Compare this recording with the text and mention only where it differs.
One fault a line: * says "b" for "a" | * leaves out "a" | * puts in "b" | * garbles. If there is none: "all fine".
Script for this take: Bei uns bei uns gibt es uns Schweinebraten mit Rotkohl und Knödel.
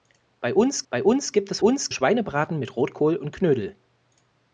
all fine